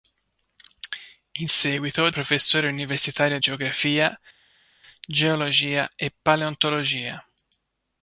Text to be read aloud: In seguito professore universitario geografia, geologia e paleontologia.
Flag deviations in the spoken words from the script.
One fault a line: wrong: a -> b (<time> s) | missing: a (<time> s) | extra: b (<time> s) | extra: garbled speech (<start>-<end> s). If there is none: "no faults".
no faults